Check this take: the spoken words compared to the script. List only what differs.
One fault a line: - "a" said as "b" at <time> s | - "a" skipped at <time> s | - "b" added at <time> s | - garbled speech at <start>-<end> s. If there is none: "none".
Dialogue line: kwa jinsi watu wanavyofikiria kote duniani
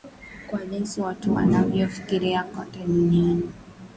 none